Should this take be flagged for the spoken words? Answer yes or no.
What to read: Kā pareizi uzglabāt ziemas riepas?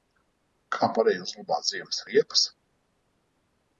no